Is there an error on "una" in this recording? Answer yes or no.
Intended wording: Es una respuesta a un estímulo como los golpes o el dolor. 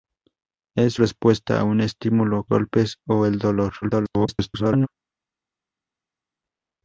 yes